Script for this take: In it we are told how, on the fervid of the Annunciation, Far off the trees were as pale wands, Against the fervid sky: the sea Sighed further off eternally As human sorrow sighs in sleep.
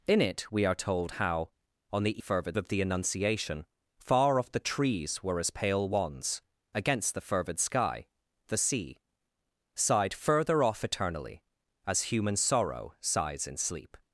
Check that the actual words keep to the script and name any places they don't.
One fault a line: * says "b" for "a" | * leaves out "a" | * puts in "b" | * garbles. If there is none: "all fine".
all fine